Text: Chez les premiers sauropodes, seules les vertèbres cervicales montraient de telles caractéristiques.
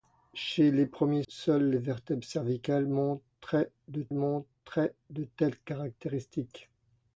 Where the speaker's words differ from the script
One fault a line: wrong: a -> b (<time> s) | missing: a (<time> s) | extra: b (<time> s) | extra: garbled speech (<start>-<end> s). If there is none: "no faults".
missing: sauropodes (1.2 s)
extra: montraient de (4.1 s)